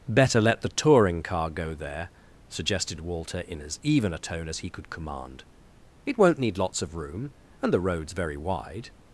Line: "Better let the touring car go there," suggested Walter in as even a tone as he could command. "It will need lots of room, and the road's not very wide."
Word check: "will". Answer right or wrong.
wrong